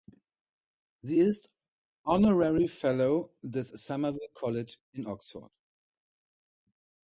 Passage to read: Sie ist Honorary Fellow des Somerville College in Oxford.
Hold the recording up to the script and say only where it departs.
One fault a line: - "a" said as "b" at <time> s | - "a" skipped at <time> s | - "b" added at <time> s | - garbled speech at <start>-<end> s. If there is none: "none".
none